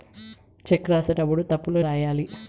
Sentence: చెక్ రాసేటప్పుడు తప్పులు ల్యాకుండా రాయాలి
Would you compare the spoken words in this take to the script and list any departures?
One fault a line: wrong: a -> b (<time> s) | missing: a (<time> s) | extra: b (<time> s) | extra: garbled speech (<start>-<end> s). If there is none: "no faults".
missing: ల్యాకుండా (1.8 s)